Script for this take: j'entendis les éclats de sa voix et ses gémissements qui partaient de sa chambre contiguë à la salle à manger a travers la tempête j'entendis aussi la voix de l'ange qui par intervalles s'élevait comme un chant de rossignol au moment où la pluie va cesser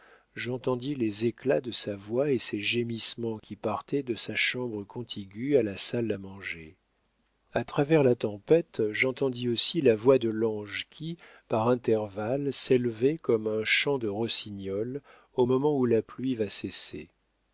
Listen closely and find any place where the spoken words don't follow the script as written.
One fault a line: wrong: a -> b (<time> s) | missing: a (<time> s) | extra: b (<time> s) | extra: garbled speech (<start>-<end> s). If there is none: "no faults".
no faults